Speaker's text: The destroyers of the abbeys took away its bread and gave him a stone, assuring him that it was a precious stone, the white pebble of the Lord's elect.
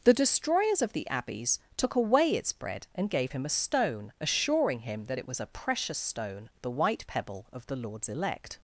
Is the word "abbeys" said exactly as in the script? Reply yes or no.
yes